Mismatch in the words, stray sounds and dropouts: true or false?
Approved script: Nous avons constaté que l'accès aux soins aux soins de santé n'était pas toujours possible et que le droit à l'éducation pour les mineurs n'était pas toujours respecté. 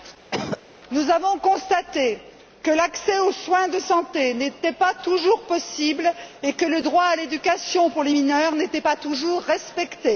true